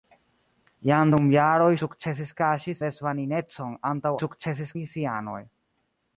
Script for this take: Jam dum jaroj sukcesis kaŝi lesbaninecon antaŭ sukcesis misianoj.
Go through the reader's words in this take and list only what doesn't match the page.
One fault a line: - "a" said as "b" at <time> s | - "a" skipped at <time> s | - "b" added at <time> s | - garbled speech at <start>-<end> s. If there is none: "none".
none